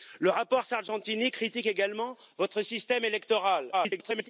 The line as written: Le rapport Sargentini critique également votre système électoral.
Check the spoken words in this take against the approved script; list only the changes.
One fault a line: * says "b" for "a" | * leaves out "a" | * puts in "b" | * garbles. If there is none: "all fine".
* garbles